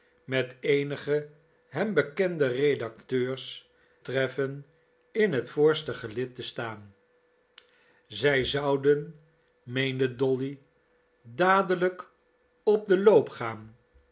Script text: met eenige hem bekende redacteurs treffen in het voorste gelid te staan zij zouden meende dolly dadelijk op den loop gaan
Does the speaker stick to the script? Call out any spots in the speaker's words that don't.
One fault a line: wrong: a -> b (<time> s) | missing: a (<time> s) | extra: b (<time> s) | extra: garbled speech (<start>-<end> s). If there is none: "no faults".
no faults